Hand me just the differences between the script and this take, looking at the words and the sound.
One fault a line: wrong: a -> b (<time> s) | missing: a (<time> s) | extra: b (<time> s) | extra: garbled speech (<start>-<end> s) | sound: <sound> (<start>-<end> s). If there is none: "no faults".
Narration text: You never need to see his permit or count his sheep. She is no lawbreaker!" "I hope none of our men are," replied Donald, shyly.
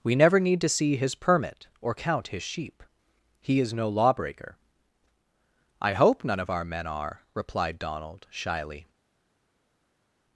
wrong: You -> We (0.0 s)
wrong: She -> He (3.4 s)